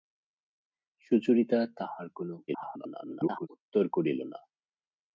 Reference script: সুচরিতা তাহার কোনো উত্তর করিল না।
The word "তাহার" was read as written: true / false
true